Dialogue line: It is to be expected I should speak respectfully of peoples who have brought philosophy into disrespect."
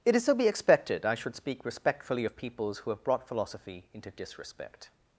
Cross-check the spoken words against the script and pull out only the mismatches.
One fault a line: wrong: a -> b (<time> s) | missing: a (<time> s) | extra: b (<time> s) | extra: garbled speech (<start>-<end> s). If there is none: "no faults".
no faults